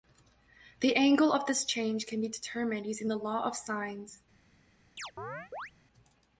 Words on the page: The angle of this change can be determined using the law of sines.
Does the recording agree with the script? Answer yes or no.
yes